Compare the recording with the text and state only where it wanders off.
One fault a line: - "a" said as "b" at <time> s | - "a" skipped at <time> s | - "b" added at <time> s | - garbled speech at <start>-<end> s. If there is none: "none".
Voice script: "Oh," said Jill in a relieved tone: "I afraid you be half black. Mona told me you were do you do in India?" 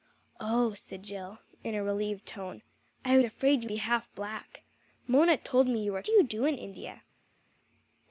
none